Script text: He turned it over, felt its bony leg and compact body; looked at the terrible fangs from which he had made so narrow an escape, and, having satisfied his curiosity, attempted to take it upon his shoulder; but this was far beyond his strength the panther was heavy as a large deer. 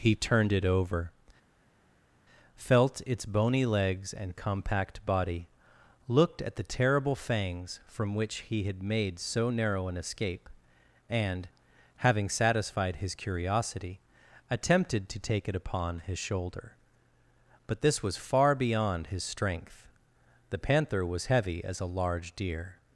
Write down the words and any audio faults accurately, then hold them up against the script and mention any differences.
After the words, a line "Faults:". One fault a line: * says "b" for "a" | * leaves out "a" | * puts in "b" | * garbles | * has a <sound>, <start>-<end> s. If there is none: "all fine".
He turned it over, felt its bony legs and compact body; looked at the terrible fangs from which he had made so narrow an escape, and, having satisfied his curiosity, attempted to take it upon his shoulder; but this was far beyond his strength the panther was heavy as a large deer.
Faults:
* says "legs" for "leg"